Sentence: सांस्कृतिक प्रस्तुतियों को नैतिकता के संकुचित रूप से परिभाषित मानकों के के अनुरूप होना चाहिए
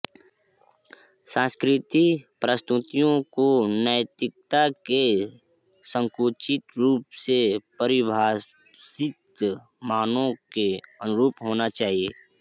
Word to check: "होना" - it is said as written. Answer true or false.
true